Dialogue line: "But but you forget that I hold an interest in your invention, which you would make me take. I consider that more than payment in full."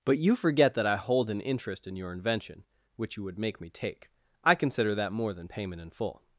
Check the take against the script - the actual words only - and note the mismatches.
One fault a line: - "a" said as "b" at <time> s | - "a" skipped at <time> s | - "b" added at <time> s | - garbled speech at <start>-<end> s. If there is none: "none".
- "but" skipped at 0.2 s